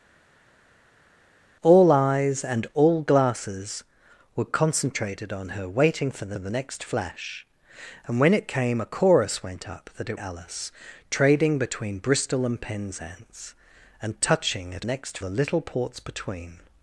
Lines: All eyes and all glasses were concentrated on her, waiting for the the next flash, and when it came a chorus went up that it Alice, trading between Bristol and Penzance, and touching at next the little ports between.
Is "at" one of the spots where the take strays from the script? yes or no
no